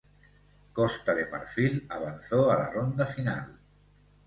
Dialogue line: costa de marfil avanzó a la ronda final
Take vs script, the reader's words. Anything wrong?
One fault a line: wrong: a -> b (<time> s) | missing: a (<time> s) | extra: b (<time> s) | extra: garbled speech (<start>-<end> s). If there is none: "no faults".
no faults